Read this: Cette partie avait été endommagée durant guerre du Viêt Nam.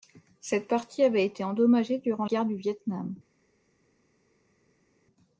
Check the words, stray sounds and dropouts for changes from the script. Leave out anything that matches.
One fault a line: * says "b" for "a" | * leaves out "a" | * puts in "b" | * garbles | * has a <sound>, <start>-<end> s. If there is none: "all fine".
all fine